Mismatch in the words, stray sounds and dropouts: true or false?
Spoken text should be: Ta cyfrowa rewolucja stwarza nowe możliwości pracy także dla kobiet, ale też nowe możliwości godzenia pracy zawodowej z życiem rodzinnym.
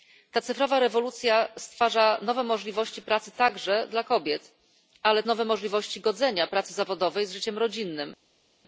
true